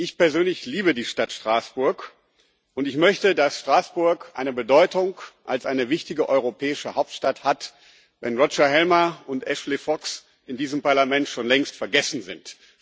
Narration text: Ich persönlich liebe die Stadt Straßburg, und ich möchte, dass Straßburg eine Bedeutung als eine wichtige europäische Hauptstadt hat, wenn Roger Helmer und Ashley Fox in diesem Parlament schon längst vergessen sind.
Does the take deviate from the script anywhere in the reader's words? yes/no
no